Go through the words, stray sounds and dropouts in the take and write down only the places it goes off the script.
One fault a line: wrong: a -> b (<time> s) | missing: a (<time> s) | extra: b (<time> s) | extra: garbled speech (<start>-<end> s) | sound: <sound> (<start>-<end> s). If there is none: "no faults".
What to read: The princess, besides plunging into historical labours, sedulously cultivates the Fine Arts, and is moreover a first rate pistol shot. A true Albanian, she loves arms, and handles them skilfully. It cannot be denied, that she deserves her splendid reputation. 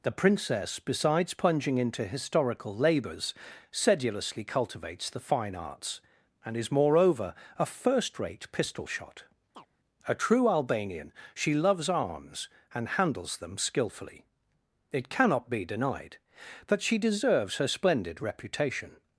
sound: chirp (9.5-9.7 s)